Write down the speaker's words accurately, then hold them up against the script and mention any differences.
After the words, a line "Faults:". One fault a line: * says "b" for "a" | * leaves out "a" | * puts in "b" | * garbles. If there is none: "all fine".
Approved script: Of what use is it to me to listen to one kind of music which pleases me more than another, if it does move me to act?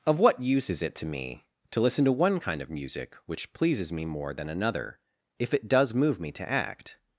Of what use is it to me to listen to one kind of music which pleases me more than another, if it does move me to act?
Faults:
all fine